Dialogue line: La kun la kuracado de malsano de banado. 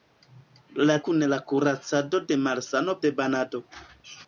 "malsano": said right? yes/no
yes